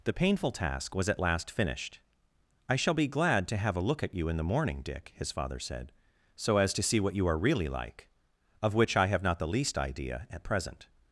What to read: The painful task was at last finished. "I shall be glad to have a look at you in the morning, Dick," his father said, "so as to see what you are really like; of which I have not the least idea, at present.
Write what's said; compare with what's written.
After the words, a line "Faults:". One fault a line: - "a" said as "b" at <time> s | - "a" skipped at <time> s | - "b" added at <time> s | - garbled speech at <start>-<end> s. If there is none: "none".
The painful task was at last finished. "I shall be glad to have a look at you in the morning, Dick," his father said, "so as to see what you are really like; of which I have not the least idea, at present.
Faults:
none